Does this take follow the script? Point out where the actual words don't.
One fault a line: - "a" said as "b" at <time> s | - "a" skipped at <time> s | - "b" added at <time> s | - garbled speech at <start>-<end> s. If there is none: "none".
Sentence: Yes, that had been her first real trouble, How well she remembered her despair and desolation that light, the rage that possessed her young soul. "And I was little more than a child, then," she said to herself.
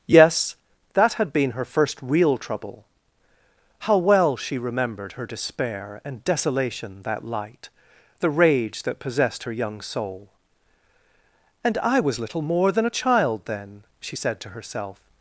none